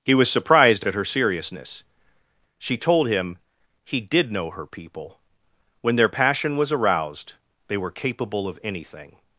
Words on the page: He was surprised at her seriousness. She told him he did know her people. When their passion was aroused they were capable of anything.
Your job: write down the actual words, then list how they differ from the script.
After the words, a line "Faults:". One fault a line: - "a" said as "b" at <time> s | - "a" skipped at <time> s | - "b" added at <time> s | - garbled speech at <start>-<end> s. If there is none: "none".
He was surprised at her seriousness. She told him he did know her people. When their passion was aroused they were capable of anything.
Faults:
none